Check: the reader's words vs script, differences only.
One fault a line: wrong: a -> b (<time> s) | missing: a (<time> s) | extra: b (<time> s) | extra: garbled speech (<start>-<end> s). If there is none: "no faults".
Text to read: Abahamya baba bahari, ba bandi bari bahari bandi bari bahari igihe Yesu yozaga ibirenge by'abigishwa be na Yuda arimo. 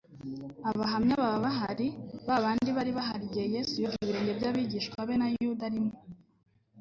missing: bandi bari bahari (3.2 s)